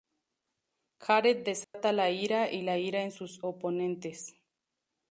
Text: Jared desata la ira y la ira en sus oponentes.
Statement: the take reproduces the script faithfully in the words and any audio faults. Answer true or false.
false